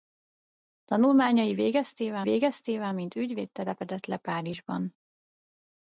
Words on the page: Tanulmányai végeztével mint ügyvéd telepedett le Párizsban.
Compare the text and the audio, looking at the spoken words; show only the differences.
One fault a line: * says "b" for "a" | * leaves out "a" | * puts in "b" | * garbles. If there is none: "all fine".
* puts in "végeztével"